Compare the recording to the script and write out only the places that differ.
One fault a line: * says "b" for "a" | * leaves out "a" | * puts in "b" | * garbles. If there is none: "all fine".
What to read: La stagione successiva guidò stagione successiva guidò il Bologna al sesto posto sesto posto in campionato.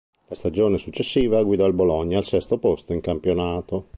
* leaves out "stagione successiva guidò"
* leaves out "sesto posto"